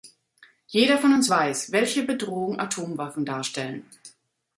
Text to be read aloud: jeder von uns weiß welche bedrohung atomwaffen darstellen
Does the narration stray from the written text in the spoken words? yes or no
no